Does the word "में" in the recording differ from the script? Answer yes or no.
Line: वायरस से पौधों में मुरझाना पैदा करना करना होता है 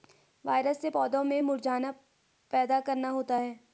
no